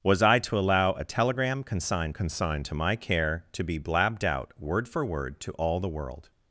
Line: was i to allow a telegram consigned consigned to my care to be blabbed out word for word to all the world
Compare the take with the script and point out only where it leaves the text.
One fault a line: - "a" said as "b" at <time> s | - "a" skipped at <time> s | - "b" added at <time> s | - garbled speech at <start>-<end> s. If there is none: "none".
none